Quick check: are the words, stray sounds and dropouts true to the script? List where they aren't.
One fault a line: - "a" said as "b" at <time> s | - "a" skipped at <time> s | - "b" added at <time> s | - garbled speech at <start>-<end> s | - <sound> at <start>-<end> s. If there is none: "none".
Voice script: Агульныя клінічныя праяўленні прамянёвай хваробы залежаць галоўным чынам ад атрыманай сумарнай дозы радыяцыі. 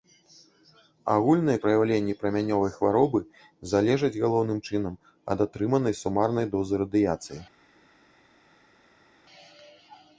- "клінічныя" skipped at 1.6 s